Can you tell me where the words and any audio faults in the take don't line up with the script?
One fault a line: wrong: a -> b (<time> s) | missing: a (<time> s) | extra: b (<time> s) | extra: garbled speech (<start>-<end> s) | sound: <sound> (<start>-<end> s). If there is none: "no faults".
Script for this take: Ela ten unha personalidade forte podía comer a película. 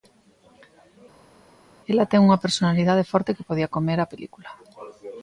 extra: que (3.4 s)